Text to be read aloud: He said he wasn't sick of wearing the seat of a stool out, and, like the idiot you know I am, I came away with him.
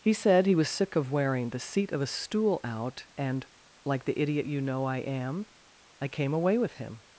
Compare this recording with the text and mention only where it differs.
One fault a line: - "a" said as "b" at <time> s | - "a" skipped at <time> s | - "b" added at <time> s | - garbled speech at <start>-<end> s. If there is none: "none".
- "wasn't" said as "was" at 0.6 s